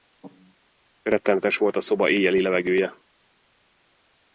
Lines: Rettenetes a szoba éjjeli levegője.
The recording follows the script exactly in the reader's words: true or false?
false